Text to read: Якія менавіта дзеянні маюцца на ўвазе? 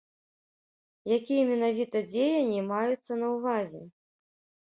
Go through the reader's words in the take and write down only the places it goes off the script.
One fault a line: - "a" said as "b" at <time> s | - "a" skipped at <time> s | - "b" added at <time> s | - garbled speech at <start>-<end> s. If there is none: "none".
none